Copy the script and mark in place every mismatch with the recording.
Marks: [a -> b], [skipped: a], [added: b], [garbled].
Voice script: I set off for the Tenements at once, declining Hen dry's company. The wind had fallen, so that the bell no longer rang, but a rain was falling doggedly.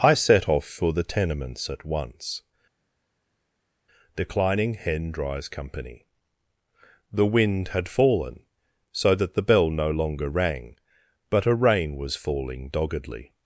I set off for the Tenements at once, declining Hen dry's company. The wind had fallen, so that the bell no longer rang, but a rain was falling doggedly.